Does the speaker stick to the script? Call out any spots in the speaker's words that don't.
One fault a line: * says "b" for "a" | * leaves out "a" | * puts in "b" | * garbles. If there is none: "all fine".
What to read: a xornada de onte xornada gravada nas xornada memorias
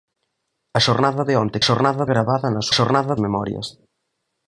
all fine